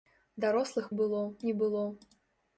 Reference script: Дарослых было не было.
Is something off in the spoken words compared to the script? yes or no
no